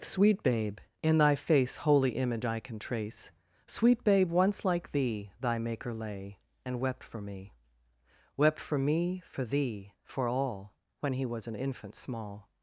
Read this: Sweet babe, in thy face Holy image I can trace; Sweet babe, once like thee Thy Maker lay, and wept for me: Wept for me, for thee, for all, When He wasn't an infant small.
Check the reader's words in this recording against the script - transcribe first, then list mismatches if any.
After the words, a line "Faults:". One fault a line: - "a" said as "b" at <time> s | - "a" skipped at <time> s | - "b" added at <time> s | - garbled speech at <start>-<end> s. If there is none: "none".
Sweet babe, in thy face Holy image I can trace; Sweet babe, once like thee Thy Maker lay, and wept for me: Wept for me, for thee, for all, When He was an infant small.
Faults:
- "wasn't" said as "was" at 11.3 s